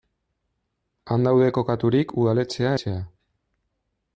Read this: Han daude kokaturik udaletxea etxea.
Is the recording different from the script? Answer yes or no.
no